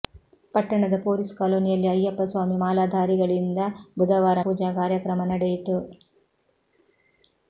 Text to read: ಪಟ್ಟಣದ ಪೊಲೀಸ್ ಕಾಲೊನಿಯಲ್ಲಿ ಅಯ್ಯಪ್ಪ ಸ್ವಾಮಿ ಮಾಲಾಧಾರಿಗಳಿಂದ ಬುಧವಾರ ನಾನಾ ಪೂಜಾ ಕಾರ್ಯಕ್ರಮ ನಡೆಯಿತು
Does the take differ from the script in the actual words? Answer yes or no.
yes